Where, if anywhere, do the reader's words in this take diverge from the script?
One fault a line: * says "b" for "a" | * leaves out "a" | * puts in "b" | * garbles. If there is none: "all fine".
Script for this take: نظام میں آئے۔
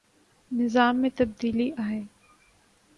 * puts in "تبدیلی"